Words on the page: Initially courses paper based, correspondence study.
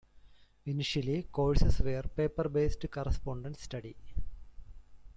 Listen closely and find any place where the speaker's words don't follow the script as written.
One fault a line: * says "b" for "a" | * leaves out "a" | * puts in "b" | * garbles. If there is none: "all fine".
* puts in "were"